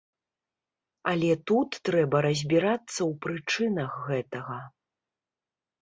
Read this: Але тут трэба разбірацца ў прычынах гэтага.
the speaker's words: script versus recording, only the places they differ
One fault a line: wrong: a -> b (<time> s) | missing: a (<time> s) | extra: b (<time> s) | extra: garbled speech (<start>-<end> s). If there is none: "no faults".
no faults